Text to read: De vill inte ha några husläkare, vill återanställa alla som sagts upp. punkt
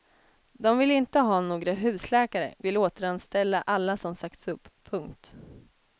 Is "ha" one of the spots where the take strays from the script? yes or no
no